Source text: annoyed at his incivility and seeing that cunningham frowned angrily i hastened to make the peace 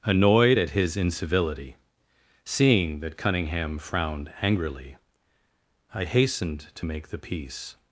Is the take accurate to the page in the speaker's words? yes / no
no